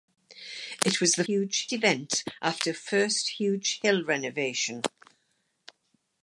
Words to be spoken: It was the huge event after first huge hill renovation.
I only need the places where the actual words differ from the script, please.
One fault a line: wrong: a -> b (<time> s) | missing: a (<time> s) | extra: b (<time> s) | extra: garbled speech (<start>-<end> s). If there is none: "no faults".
no faults